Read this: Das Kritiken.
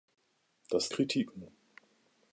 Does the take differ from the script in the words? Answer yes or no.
no